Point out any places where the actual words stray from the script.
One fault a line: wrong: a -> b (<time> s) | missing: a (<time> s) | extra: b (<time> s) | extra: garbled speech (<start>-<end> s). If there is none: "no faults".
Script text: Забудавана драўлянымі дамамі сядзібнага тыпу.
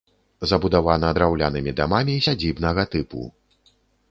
no faults